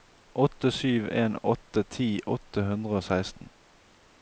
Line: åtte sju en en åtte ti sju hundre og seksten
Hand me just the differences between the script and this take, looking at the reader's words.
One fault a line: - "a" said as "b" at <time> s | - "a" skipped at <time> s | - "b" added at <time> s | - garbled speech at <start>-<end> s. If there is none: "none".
- "en" skipped at 1.4 s
- "sju" said as "åtte" at 2.4 s